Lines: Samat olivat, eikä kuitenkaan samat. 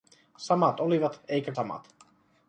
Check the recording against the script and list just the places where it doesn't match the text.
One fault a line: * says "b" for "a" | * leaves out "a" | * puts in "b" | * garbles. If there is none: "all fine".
* leaves out "kuitenkaan"